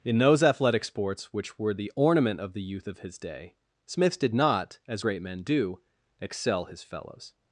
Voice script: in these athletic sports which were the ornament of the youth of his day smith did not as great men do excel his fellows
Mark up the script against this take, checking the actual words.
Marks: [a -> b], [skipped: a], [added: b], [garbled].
in [these -> those] athletic sports which were the ornament of the youth of his day smith did not as great men do excel his fellows